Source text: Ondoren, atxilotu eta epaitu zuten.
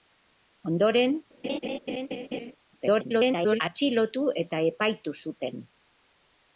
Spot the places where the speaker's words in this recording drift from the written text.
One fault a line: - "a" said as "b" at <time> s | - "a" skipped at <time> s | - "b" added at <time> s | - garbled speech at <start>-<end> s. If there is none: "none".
- garbled speech at 2.7-3.6 s